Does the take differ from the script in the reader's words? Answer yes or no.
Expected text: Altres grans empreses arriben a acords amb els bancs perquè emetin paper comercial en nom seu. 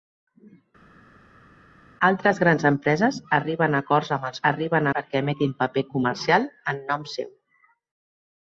yes